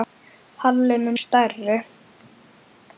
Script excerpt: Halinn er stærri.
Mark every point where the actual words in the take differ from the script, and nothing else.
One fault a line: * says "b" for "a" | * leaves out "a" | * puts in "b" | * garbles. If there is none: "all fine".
all fine